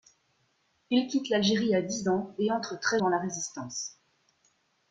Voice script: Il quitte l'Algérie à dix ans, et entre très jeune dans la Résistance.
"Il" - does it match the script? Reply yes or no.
yes